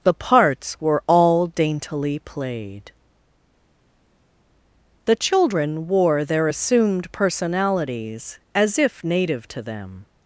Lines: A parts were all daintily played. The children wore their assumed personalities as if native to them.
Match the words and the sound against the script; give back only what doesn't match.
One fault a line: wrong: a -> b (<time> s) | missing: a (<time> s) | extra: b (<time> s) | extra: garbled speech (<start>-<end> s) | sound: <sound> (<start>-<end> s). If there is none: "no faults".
wrong: A -> The (0.0 s)